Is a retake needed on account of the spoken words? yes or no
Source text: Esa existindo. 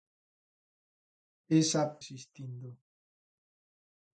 no